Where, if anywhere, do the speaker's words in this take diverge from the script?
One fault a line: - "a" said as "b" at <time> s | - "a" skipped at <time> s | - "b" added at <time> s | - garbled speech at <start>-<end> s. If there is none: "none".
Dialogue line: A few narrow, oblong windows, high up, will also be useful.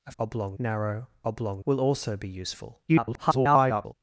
- "few" said as "oblong" at 0.2 s
- "windows high up" skipped at 1.6 s
- garbled speech at 2.9-3.9 s